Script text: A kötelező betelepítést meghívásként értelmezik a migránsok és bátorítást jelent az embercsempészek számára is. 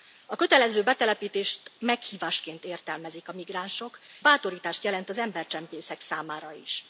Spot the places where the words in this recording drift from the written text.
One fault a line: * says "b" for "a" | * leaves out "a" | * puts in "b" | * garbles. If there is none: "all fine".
* leaves out "és"